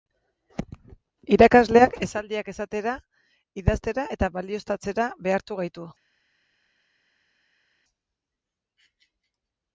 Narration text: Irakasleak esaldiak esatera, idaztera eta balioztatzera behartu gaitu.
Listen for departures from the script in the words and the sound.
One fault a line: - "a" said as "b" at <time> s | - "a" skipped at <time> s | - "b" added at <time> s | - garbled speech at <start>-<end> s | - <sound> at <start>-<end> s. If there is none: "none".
none